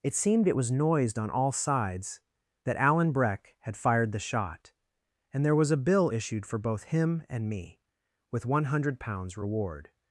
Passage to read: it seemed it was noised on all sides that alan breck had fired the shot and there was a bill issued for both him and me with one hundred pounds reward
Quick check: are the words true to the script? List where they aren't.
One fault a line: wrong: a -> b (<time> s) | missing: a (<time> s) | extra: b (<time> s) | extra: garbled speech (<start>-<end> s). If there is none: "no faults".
no faults